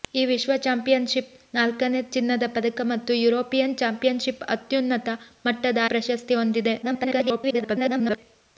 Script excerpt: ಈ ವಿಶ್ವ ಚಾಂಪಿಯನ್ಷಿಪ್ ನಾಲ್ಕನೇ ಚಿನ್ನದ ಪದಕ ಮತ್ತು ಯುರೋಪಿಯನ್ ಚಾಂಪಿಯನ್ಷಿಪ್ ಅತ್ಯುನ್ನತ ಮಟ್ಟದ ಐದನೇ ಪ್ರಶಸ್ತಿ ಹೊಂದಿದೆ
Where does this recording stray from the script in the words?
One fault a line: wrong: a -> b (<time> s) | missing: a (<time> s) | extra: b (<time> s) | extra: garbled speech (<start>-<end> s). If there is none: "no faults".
missing: ಐದನೇ (5.8 s)
extra: garbled speech (6.8-8.2 s)